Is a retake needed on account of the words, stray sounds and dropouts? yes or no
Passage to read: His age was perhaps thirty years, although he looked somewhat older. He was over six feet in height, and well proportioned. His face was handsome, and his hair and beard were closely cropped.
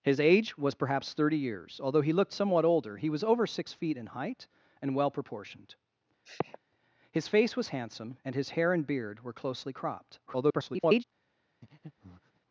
yes